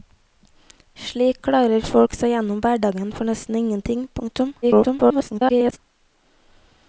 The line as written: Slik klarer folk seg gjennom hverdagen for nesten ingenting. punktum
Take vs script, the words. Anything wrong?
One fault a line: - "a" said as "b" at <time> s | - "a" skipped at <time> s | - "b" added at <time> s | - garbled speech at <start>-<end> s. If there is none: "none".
- garbled speech at 4.6-5.8 s